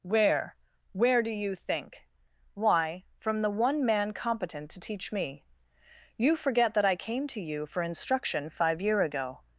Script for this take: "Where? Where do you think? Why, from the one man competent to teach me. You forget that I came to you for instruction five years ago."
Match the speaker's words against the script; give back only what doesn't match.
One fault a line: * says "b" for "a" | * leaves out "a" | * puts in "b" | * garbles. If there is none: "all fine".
* says "year" for "years"